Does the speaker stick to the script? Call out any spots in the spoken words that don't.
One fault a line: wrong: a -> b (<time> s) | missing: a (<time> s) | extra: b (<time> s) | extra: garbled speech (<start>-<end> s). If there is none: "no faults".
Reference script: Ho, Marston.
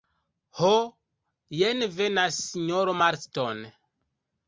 extra: jen venas sinjoro (1.6 s)